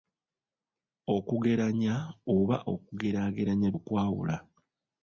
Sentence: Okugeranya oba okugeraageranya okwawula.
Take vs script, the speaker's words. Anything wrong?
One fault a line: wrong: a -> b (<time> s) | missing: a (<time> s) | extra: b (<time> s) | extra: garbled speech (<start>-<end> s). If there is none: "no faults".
no faults